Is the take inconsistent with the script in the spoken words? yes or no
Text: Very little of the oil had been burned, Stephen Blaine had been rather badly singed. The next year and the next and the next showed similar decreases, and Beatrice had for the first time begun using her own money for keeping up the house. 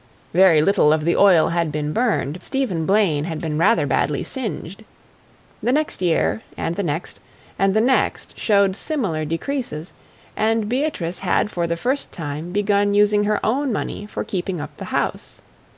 no